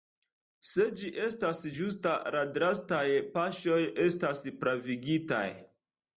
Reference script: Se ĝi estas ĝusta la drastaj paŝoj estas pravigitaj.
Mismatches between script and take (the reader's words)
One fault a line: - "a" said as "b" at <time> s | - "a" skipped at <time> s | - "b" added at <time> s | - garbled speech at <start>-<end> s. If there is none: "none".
none